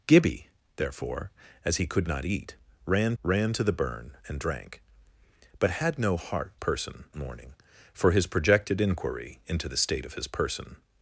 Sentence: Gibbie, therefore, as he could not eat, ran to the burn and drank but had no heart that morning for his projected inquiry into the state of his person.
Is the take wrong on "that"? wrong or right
wrong